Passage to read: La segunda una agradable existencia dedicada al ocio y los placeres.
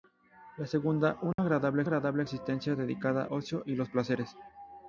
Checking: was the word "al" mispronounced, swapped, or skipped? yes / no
yes